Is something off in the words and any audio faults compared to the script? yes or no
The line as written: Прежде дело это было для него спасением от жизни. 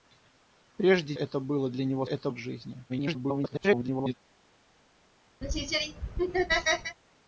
yes